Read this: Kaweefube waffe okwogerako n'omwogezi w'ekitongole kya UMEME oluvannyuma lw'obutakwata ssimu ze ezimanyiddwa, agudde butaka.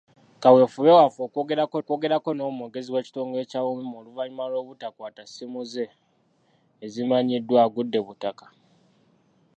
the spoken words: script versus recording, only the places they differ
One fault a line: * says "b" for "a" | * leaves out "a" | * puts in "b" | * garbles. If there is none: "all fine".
* puts in "okwogerako"